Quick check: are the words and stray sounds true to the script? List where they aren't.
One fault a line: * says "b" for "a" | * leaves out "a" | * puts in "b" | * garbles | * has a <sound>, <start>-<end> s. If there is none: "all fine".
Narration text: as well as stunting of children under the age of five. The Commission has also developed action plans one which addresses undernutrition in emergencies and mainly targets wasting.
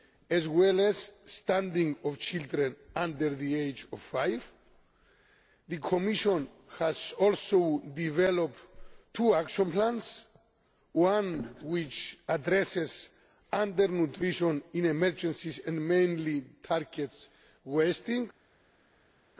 * puts in "two"